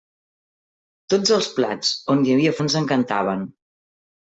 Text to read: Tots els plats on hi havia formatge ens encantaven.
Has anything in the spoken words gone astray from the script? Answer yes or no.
yes